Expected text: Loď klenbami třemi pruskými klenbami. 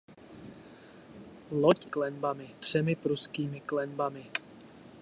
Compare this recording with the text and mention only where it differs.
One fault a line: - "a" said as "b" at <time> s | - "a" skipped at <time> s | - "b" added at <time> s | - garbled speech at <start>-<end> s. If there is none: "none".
none